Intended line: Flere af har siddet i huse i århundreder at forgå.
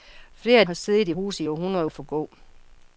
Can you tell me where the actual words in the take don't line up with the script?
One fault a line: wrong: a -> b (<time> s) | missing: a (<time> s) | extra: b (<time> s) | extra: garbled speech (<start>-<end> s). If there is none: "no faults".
no faults